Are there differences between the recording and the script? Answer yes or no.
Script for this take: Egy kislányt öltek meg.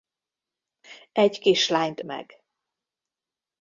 yes